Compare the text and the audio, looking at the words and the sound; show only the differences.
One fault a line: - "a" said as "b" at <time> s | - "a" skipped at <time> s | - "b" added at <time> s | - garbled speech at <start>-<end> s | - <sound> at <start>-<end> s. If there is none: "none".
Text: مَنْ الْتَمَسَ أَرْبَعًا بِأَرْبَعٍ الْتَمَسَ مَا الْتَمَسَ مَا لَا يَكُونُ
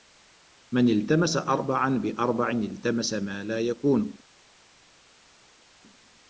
- "الْتَمَسَ مَا" skipped at 3.4 s